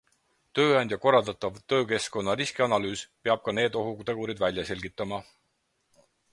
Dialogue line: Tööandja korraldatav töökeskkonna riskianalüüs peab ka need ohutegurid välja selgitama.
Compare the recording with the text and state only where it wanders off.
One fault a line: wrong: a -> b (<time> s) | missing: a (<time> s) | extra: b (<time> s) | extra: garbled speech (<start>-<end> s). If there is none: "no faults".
no faults